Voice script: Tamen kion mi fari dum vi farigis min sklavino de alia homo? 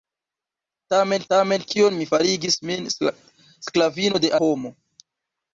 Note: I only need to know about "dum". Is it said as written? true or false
false